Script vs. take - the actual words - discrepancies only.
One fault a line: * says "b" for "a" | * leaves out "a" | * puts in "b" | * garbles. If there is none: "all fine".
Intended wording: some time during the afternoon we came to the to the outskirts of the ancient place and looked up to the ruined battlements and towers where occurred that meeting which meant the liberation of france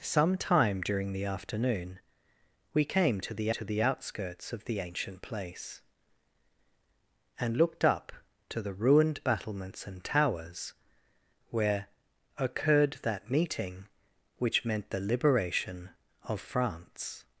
all fine